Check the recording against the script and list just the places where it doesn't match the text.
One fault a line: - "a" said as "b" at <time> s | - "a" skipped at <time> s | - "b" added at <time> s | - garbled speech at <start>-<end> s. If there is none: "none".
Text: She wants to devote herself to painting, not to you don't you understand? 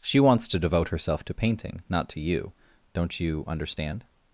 none